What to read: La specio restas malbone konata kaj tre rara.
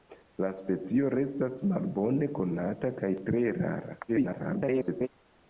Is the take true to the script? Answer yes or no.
no